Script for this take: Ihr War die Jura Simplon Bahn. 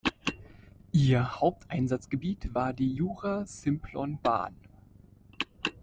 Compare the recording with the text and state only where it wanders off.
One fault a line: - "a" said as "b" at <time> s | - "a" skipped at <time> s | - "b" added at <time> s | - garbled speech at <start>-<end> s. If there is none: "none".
- "Haupteinsatzgebiet" added at 1.4 s